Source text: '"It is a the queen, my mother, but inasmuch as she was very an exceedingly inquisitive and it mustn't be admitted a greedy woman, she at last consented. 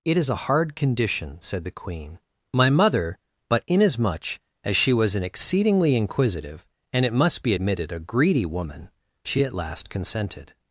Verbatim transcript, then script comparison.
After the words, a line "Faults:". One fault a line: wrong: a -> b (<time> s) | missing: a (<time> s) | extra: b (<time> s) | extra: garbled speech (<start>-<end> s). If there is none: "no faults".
'"It is a hard condition," said the queen, my mother, but inasmuch as she was an exceedingly inquisitive and it must be admitted a greedy woman, she at last consented.
Faults:
extra: hard condition said (0.5 s)
missing: very (5.1 s)
wrong: mustn't -> must (7.1 s)